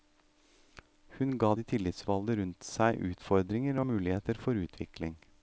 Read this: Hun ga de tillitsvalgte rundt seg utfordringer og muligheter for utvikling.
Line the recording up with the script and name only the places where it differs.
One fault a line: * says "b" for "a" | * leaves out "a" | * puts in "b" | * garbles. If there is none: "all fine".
all fine